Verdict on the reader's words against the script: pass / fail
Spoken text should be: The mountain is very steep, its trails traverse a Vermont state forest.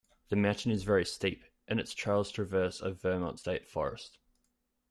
fail